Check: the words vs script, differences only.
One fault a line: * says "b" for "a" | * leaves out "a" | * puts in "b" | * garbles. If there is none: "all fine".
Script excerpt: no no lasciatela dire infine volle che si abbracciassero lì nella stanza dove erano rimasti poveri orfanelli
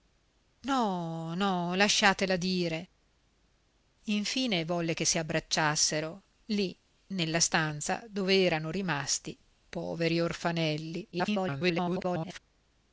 * garbles